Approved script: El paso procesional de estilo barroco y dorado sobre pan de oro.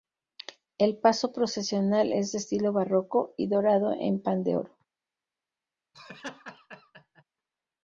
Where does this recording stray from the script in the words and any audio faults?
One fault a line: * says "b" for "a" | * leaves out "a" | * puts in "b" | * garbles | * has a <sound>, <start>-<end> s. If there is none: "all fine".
* puts in "es"
* says "en" for "sobre"
* has a laugh, 5.9-7.2 s